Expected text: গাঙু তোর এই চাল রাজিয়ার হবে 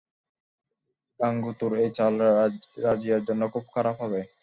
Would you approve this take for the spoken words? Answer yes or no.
no